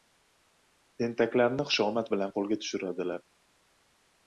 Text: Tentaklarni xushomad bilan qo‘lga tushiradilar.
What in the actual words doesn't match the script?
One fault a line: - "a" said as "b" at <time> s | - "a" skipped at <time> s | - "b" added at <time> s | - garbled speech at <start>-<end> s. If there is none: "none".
none